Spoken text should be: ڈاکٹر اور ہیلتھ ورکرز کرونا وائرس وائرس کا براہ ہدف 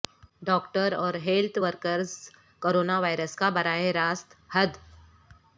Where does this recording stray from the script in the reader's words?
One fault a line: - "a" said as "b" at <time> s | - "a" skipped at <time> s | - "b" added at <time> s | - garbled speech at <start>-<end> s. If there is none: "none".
- "وائرس" skipped at 3.3 s
- "راست" added at 3.9 s